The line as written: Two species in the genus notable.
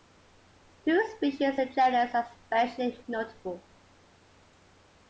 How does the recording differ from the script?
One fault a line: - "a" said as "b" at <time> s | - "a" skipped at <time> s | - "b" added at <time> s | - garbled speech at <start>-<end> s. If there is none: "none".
- "are especially" added at 2.1 s